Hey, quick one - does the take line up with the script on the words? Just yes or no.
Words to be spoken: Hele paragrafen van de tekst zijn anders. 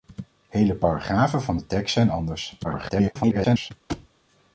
no